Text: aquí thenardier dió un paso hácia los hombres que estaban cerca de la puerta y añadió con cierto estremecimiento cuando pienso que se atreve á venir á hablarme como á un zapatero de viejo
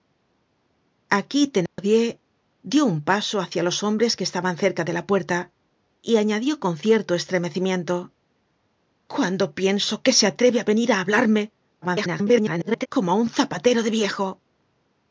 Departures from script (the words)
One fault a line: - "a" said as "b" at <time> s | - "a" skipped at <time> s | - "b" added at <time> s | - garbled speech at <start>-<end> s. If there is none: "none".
- garbled speech at 11.8-12.9 s